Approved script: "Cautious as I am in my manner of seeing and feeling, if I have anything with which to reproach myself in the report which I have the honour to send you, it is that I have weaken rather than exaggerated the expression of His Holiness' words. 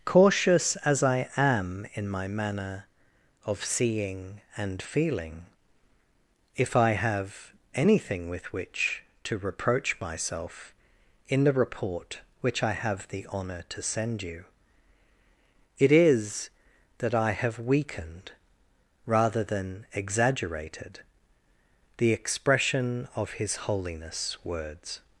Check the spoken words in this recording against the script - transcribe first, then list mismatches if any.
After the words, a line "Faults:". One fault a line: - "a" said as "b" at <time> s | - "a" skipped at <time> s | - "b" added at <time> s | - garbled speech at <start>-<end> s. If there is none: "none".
"Cautious as I am in my manner of seeing and feeling, if I have anything with which to reproach myself in the report which I have the honour to send you, it is that I have weakened rather than exaggerated the expression of His Holiness' words.
Faults:
- "weaken" said as "weakened" at 17.6 s